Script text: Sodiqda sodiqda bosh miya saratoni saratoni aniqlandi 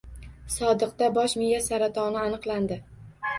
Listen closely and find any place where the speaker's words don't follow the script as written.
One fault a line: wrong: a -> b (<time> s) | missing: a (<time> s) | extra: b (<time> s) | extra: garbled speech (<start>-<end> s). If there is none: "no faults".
missing: sodiqda (1.1 s)
missing: saratoni (2.2 s)